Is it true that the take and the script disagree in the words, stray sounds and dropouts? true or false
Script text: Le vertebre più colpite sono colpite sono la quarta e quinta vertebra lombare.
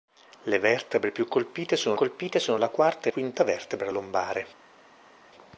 false